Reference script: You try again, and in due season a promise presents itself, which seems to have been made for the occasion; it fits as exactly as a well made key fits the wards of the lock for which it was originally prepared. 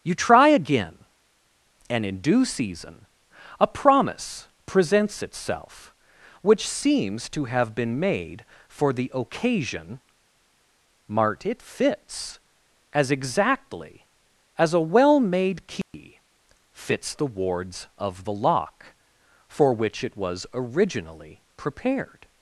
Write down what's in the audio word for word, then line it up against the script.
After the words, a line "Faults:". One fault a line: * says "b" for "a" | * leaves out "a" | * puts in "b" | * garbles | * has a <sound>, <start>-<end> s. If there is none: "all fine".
You try again, and in due season a promise presents itself, which seems to have been made for the occasion; mart it fits as exactly as a well made key fits the wards of the lock for which it was originally prepared.
Faults:
* puts in "mart"
* has a dropout, 15.8-15.9 s